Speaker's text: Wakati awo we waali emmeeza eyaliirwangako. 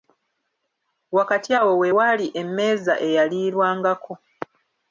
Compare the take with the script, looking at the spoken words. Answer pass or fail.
pass